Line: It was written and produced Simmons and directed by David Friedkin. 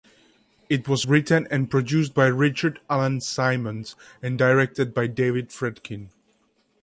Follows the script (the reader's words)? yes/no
no